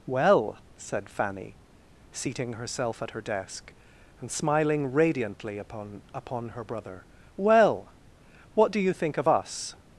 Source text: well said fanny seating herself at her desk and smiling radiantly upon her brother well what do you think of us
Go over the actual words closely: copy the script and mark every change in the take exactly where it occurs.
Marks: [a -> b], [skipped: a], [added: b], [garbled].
well said fanny seating herself at her desk and smiling radiantly upon [added: upon] her brother well what do you think of us